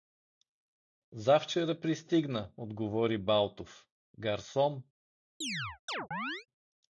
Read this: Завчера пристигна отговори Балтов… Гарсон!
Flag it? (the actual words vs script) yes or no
no